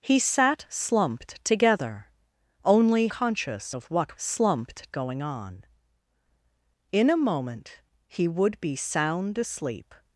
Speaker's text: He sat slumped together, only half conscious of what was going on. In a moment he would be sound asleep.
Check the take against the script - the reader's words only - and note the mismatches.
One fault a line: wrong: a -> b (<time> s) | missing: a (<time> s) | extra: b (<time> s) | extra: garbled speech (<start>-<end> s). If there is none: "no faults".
missing: half (3.1 s)
wrong: was -> slumped (4.1 s)